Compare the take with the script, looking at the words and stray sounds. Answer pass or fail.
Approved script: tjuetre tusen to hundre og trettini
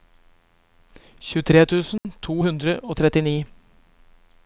fail